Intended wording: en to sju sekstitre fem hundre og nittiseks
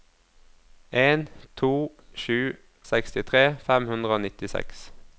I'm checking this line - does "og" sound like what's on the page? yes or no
yes